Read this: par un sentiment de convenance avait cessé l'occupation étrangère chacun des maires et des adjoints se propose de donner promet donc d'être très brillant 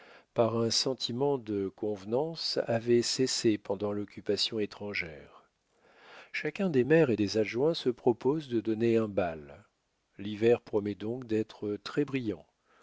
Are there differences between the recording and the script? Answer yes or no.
yes